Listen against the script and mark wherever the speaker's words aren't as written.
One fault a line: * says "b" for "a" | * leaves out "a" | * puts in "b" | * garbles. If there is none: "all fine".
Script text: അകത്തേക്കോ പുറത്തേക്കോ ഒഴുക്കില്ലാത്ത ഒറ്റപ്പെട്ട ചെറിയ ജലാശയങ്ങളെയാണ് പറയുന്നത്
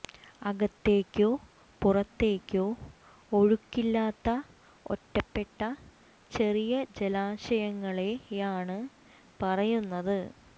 all fine